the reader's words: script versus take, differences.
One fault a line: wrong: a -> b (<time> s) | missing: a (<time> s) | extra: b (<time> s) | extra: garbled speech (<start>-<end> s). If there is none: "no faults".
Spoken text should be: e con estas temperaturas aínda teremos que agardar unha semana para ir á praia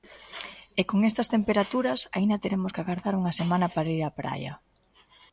no faults